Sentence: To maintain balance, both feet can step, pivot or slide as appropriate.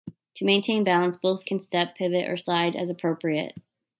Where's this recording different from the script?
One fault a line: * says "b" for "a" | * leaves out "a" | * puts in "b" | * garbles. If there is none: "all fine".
* leaves out "feet"